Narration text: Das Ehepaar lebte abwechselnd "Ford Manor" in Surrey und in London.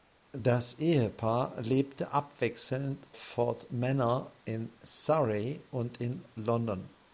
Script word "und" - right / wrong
right